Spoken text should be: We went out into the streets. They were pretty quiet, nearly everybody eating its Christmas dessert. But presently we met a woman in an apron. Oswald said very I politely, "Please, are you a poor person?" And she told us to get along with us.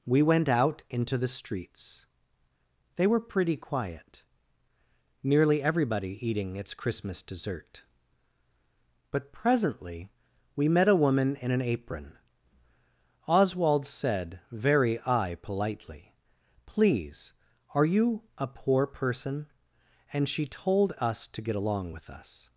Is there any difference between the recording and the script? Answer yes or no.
no